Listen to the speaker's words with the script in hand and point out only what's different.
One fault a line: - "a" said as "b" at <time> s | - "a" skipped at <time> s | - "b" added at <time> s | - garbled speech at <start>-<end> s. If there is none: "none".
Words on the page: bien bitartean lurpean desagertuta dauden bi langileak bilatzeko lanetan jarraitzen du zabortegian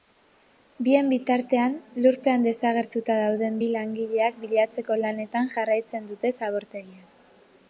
- "du" said as "dute" at 6.1 s